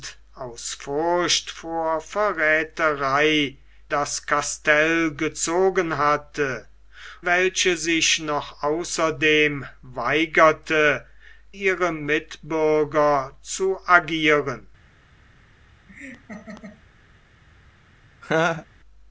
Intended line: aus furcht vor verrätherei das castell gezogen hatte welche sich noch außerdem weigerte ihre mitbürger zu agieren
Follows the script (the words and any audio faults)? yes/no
no